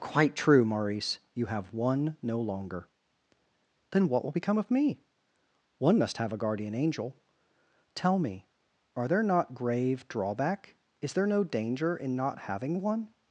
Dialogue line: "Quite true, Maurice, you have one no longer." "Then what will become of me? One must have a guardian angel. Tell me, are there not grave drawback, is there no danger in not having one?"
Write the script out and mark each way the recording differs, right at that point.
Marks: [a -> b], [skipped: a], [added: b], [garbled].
"Quite true, Maurice, you have one no longer." "Then what will become of me? One must have a guardian angel. Tell me, are there not grave drawback, is there no danger in not having one?"